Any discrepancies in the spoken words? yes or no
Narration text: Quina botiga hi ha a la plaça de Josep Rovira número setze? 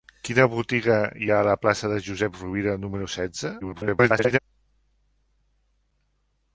yes